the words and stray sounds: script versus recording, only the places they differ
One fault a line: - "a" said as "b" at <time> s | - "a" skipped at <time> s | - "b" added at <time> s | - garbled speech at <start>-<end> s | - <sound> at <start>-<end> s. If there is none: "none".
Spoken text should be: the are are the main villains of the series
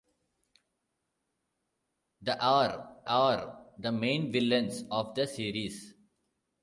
none